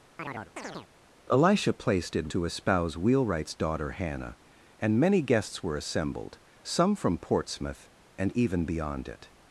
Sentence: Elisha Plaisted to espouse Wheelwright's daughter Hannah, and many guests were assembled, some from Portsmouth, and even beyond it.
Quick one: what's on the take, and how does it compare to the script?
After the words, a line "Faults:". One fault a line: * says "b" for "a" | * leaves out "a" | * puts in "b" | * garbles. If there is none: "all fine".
Elisha Plaisted to espouse Wheelwright's daughter Hannah, and many guests were assembled, some from Portsmouth, and even beyond it.
Faults:
all fine